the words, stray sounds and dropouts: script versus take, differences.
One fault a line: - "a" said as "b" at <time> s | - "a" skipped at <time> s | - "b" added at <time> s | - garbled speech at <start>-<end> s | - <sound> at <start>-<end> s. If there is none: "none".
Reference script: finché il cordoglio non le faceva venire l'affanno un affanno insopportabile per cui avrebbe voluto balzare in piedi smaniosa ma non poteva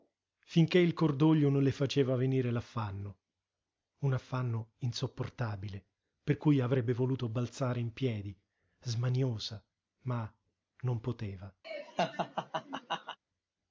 - laugh at 11.6-13.2 s